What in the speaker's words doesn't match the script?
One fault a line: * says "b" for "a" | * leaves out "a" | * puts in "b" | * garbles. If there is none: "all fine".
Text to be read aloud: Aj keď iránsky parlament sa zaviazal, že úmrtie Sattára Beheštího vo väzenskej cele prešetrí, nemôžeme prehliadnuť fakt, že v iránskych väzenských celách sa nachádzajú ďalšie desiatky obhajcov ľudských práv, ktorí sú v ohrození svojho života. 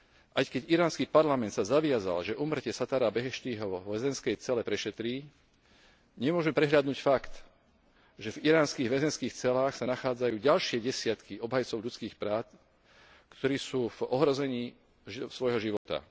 all fine